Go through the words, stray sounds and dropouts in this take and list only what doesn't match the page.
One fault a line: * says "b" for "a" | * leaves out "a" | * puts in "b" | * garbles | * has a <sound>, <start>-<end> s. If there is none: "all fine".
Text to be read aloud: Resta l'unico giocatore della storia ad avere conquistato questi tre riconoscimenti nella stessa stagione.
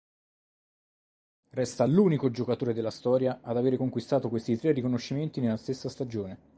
all fine